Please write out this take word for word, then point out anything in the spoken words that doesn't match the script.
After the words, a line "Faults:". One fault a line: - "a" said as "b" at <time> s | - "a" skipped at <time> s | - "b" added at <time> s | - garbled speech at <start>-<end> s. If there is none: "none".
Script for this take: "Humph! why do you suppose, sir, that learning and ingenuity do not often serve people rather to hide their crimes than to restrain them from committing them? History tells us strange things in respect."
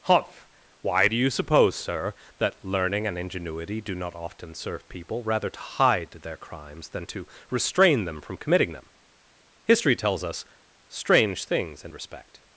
"Humph! why do you suppose, sir, that learning and ingenuity do not often serve people rather to hide their crimes than to restrain them from committing them? History tells us strange things in respect."
Faults:
none